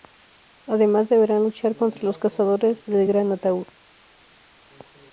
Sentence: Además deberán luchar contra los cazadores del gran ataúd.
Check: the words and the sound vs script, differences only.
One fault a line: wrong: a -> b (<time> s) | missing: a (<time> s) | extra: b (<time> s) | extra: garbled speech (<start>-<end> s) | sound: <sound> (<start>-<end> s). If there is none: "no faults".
no faults